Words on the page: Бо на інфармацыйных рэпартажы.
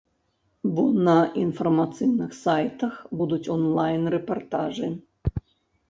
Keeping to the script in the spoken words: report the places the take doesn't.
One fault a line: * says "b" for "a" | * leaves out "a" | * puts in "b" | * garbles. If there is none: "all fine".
* puts in "сайтах будуць онлайн"